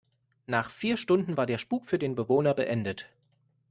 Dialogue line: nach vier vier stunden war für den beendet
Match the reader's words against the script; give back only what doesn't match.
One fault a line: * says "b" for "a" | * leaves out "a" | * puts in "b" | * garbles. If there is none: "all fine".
* leaves out "vier"
* puts in "der spuk"
* puts in "bewohner"